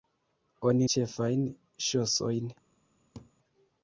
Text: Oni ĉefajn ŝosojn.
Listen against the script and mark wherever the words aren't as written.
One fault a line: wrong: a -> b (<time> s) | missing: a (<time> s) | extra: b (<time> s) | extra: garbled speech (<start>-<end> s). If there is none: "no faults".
no faults